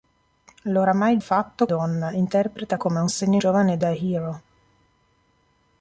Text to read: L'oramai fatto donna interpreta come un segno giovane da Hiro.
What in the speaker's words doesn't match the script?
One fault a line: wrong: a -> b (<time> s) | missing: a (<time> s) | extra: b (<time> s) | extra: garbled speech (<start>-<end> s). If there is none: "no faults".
no faults